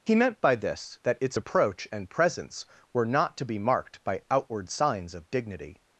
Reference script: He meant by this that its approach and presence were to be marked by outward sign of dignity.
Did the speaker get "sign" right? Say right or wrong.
wrong